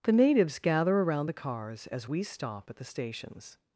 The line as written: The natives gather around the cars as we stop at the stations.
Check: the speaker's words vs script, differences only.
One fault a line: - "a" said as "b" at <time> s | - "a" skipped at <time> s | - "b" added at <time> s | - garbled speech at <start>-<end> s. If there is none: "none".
none